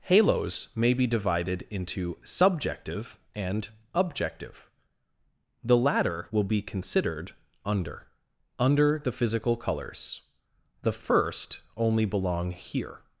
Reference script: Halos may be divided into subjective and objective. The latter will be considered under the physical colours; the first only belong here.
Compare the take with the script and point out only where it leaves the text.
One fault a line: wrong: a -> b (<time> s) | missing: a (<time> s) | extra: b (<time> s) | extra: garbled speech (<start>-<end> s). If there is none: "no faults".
extra: under (8.6 s)